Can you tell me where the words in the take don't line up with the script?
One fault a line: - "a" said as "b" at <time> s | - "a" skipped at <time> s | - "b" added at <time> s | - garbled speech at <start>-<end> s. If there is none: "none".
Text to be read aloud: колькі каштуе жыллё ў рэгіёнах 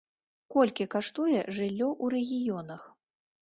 none